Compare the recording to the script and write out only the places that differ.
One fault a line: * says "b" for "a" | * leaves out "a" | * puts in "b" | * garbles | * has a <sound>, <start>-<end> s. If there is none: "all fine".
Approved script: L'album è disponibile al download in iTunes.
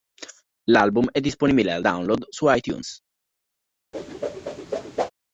* says "su" for "in"
* has a whoosh, 3.9-5.1 s